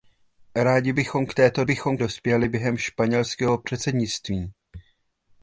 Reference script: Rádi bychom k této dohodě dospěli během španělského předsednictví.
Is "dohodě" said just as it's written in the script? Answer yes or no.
no